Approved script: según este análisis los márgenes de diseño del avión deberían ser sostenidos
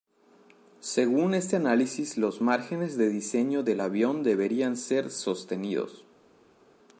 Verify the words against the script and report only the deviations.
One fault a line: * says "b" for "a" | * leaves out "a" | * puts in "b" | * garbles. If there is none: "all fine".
all fine